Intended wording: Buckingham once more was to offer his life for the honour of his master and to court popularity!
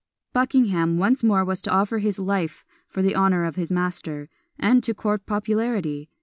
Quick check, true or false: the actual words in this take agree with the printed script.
true